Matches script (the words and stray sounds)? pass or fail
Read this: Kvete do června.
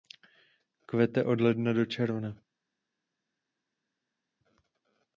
fail